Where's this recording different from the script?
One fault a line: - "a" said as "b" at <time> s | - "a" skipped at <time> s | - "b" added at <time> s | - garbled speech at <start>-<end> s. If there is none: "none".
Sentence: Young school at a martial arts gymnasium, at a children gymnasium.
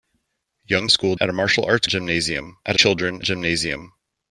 none